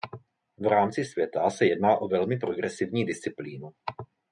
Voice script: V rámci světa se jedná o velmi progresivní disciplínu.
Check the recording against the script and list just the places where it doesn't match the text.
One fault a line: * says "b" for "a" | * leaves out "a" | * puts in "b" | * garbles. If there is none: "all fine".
all fine